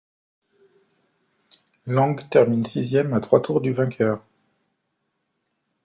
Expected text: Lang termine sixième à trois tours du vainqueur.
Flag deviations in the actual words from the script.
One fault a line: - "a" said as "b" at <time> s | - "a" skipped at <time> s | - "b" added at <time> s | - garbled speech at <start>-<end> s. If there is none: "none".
none